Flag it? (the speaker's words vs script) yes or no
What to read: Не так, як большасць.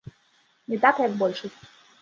no